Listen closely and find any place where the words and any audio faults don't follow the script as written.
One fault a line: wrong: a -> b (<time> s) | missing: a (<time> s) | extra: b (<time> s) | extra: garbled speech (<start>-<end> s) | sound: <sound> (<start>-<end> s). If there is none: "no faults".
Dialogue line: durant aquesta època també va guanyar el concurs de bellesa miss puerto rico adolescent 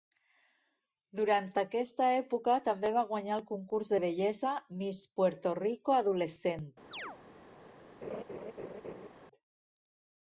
sound: chirp (6.9-7.2 s)
sound: laugh (8.0-9.1 s)